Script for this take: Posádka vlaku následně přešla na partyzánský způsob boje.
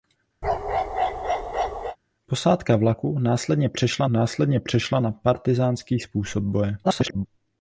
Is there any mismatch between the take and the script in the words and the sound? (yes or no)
yes